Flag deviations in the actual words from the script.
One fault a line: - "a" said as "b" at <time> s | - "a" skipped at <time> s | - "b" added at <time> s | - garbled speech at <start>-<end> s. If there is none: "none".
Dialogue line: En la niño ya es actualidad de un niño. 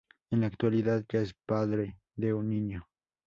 - "niño" said as "actualidad" at 0.5 s
- "actualidad" said as "padre" at 1.4 s